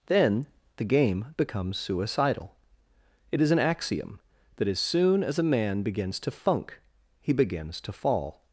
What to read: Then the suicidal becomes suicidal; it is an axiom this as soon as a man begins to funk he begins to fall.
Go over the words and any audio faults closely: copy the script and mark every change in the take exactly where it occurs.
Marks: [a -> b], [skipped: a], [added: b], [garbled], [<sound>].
Then the [suicidal -> game] becomes suicidal; it is an axiom [this -> that] as soon as a man begins to funk he begins to fall.